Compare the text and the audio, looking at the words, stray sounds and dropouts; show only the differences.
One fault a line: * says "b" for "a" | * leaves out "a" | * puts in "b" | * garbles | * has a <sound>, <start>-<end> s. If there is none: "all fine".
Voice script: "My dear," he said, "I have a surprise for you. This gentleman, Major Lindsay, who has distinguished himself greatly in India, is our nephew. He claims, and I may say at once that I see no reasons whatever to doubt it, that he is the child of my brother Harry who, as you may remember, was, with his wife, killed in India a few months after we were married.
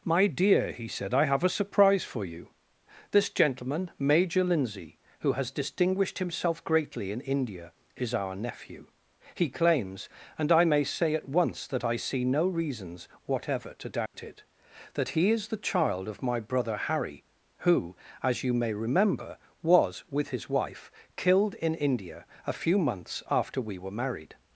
* has a dropout, 14.1-14.1 s